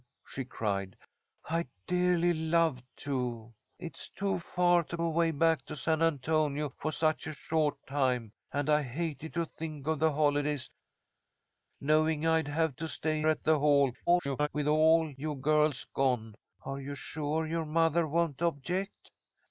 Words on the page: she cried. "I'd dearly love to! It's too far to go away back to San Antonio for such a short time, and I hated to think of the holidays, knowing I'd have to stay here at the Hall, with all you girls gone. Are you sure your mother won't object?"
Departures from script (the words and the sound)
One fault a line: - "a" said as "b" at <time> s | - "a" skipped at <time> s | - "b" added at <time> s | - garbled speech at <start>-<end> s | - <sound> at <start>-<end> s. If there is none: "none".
- "go" skipped at 5.0 s
- "here" skipped at 13.2 s
- garbled speech at 14.1-14.5 s